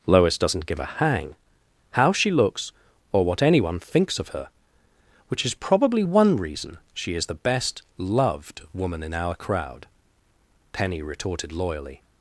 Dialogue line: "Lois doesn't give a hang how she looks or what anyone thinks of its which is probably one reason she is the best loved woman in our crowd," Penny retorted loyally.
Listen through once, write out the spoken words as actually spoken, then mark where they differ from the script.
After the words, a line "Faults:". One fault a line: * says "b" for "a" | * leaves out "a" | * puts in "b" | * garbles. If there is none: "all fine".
"Lois doesn't give a hang how she looks or what anyone thinks of her which is probably one reason she is the best loved woman in our crowd," Penny retorted loyally.
Faults:
* says "her" for "its"